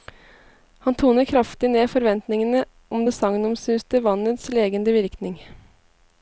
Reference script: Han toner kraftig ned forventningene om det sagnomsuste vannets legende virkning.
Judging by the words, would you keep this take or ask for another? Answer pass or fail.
pass